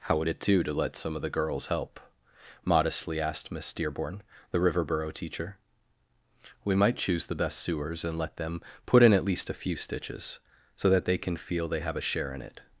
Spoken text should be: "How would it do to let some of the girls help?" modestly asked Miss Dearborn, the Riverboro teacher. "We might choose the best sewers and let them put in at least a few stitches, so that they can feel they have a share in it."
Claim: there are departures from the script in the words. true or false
false